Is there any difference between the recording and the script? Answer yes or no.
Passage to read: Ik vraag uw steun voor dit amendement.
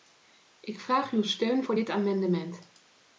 no